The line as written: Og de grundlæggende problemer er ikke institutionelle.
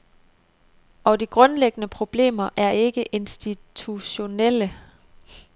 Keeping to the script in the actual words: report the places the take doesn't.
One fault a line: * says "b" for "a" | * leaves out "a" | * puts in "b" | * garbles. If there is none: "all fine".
all fine